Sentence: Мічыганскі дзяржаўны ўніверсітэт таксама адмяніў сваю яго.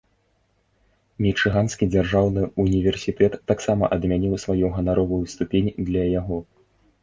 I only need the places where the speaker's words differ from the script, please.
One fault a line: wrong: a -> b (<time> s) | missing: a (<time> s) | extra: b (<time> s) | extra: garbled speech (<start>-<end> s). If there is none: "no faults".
extra: ганаровую ступень для (4.8 s)